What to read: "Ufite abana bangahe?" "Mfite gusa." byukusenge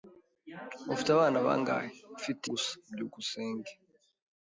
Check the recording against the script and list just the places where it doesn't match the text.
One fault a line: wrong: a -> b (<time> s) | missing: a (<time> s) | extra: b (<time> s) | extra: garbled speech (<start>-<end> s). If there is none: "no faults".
no faults